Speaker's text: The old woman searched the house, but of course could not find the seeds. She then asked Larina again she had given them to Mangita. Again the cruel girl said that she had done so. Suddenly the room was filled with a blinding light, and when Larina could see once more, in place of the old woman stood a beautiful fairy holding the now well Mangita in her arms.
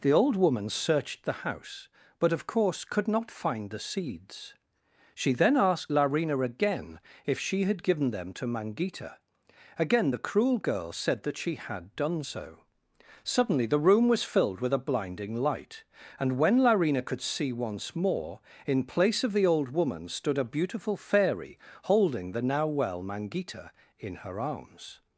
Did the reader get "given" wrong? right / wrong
right